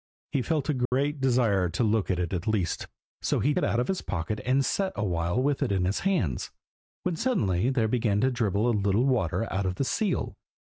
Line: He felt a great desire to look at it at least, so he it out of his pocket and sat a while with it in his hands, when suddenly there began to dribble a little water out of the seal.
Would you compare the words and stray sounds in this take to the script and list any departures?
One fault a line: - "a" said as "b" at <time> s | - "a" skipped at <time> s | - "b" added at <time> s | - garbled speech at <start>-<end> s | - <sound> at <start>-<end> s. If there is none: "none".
- dropout at 0.9-0.9 s